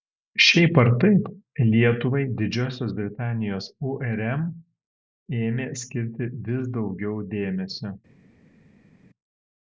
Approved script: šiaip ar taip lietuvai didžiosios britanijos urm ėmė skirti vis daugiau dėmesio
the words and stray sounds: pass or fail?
pass